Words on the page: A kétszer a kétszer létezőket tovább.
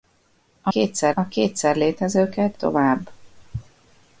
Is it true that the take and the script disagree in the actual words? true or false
false